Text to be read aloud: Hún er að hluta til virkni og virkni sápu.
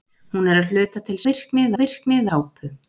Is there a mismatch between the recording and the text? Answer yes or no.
no